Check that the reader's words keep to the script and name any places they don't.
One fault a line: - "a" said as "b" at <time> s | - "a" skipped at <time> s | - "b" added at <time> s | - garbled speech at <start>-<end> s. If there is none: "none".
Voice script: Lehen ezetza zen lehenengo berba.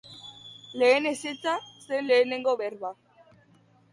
none